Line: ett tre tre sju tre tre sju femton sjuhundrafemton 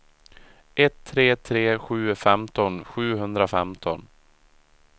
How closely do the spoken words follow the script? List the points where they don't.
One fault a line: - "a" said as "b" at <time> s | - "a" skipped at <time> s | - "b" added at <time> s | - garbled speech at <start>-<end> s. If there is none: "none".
- "tre tre sju" skipped at 2.1 s